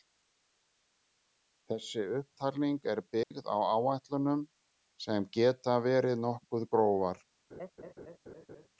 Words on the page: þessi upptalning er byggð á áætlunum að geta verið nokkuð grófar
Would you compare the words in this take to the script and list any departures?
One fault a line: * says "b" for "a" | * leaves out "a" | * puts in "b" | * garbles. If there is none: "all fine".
* says "sem" for "að"